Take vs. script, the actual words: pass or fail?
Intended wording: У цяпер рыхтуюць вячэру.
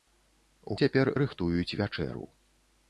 pass